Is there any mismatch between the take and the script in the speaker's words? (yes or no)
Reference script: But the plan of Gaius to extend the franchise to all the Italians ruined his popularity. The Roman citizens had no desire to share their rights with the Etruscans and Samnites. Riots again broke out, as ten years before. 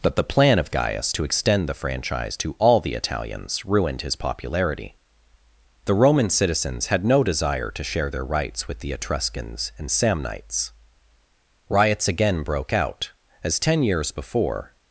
no